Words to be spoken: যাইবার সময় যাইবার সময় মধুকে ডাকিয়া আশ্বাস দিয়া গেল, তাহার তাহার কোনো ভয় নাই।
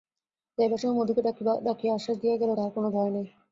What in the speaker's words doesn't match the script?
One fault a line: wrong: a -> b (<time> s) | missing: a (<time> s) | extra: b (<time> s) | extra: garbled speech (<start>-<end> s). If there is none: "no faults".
missing: যাইবার সময় (1.0 s)
missing: তাহার (2.7 s)